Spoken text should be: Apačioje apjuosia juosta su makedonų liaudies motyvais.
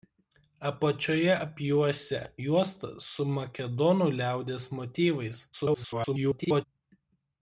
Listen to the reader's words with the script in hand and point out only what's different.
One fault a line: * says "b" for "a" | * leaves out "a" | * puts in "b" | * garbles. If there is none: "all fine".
* garbles